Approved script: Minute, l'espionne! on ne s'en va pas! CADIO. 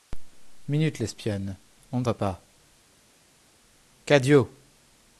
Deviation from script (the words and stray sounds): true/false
true